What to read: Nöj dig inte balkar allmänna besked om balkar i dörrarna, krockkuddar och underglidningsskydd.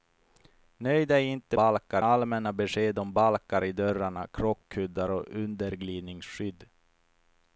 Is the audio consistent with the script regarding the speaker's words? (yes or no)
yes